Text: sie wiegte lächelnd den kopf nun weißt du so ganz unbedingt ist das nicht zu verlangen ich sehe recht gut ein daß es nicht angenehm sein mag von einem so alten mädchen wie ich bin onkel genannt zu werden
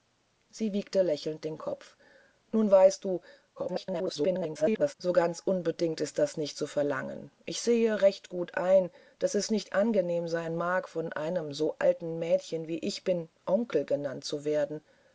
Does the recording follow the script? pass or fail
fail